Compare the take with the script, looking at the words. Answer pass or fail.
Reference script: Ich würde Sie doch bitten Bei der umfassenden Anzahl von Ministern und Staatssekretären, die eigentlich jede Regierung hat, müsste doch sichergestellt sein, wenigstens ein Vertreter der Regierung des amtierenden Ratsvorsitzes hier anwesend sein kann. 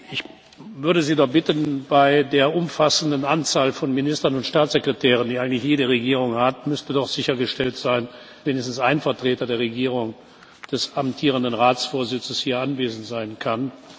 pass